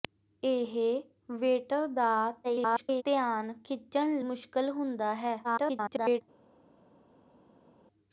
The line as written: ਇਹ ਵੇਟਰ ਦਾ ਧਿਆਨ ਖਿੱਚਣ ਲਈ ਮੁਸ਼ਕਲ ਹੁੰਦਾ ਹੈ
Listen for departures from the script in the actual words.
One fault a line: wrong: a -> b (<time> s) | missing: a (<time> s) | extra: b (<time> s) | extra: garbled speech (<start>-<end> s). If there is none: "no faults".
extra: garbled speech (2.4-3.0 s)
missing: ਲਈ (4.2 s)
extra: garbled speech (5.4-6.2 s)